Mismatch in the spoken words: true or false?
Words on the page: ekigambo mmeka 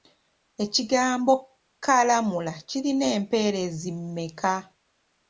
true